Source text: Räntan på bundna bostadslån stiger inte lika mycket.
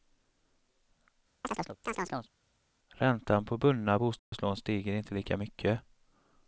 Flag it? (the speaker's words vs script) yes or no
no